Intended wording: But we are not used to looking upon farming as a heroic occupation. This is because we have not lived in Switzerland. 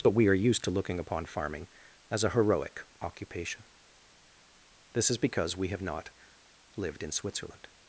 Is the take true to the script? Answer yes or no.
no